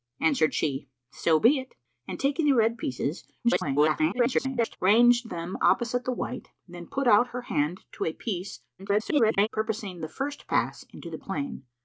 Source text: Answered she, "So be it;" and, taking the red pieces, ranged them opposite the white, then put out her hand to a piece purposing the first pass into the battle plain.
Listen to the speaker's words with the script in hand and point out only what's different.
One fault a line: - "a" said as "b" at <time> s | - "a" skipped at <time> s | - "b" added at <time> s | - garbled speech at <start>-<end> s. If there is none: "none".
- garbled speech at 3.4-4.8 s
- garbled speech at 8.8-9.5 s
- "battle" skipped at 11.2 s